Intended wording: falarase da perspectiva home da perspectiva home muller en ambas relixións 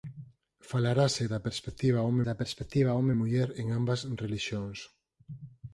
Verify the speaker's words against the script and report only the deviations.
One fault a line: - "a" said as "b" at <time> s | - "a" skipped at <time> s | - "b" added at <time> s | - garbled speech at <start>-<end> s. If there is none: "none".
none